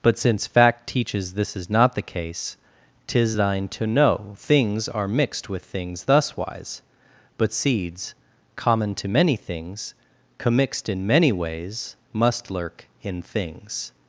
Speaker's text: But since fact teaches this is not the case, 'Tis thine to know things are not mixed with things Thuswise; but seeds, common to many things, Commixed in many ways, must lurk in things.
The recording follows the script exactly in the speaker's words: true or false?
false